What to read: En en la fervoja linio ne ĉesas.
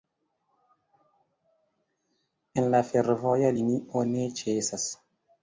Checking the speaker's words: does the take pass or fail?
fail